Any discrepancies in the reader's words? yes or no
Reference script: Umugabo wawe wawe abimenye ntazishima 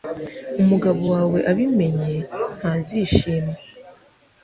yes